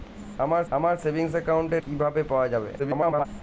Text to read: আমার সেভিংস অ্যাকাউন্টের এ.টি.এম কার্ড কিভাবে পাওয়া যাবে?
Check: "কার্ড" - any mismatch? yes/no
yes